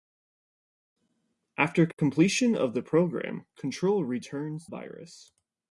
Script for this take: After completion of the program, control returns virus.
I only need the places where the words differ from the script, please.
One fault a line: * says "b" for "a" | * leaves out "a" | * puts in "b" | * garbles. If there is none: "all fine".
all fine